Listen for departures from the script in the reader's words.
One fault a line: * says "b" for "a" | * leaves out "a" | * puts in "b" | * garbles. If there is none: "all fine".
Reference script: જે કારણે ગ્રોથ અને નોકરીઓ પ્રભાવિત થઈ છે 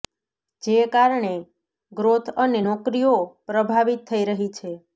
* puts in "રહી"